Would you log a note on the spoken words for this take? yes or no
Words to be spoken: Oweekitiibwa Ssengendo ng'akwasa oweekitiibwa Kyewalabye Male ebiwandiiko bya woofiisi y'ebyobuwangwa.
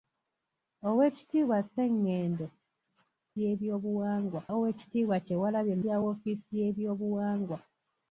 yes